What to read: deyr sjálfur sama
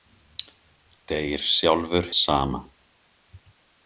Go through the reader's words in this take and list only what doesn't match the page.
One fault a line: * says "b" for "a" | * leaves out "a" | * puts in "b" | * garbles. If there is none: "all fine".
all fine